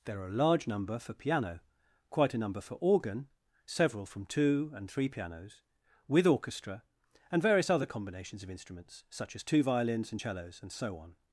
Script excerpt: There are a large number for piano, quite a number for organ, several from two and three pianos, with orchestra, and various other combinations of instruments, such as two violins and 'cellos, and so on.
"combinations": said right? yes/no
yes